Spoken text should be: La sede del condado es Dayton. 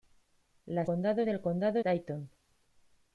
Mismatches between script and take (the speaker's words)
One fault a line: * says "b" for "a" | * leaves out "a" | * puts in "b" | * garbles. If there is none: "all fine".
* says "condado" for "sede"
* leaves out "es"